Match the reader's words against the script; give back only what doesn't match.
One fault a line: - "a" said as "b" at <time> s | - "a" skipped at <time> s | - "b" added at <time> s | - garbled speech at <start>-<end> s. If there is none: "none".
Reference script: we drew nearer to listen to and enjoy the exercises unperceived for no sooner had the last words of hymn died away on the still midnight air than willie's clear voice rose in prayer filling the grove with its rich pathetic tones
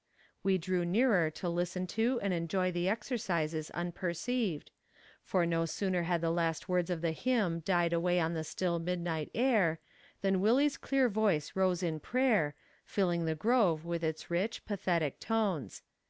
- "the" added at 7.0 s